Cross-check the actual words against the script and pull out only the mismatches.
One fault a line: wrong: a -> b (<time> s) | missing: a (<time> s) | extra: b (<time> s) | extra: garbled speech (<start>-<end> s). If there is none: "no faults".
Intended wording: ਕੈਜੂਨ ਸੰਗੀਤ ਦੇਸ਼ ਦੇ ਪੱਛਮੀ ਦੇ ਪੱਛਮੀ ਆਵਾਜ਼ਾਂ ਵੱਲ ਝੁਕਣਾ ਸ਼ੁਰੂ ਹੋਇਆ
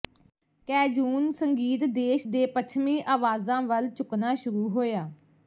missing: ਦੇ ਪੱਛਮੀ (3.0 s)